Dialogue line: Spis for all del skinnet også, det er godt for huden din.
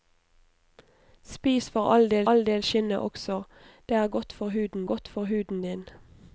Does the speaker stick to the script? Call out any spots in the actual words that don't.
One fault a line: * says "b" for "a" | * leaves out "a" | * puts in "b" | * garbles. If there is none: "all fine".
* puts in "all del"
* puts in "godt for huden"